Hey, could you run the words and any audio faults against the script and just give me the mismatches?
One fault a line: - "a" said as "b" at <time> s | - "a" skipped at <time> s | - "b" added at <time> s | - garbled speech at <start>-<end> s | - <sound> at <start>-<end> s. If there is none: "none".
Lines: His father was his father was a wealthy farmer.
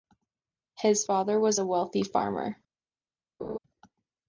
- "his father was" skipped at 1.6 s
- laugh at 3.4-3.6 s